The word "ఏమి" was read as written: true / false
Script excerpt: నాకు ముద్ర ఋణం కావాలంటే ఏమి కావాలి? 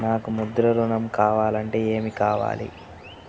true